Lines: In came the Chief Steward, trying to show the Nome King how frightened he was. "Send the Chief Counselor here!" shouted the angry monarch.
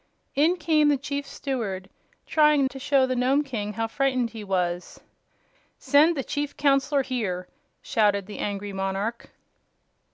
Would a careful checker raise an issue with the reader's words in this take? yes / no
no